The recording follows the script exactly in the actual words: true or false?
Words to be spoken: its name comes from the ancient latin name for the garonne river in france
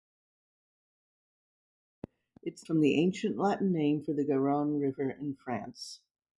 false